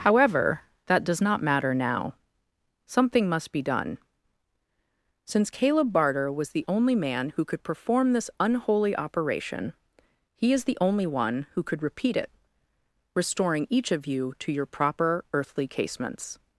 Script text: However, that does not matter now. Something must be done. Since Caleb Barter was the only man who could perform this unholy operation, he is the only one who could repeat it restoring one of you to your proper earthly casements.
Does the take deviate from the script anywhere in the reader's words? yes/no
yes